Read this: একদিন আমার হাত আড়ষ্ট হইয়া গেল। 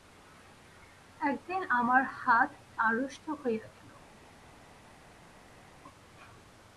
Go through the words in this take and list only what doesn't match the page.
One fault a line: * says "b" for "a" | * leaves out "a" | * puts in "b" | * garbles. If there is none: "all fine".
all fine